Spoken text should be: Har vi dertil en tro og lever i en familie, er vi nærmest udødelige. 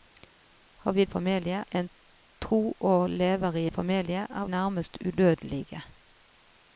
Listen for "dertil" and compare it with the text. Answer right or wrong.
wrong